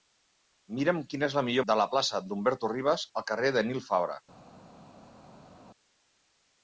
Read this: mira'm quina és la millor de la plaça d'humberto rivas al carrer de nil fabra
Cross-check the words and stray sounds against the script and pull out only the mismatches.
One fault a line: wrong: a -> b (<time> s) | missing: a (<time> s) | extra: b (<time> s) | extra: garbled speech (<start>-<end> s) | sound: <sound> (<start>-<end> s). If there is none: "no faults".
no faults